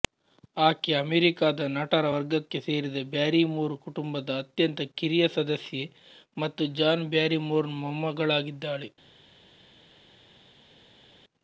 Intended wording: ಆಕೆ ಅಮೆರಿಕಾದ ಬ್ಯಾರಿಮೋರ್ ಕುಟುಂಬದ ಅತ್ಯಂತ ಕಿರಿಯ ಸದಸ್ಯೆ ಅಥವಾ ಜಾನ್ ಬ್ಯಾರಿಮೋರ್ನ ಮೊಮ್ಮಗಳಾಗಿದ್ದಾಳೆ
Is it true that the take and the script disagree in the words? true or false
true